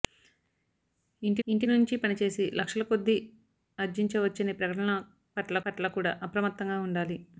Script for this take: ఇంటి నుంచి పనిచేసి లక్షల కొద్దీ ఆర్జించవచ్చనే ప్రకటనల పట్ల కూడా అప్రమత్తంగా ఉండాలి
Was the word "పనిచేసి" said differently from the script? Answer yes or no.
no